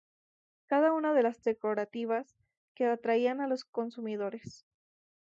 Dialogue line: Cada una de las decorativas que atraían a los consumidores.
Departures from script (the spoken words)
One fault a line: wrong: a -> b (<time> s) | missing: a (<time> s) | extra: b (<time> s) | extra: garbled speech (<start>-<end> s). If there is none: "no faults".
no faults